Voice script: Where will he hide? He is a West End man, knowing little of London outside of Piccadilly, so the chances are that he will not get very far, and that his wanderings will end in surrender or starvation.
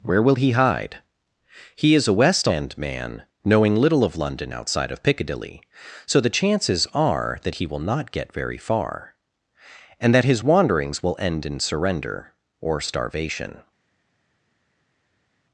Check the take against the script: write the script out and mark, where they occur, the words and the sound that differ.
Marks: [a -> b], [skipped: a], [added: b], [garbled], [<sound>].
Where will he hide? He is a West End man, knowing little of London outside of Piccadilly, so the chances are that he will not get very far, and that his wanderings will end in surrender or starvation.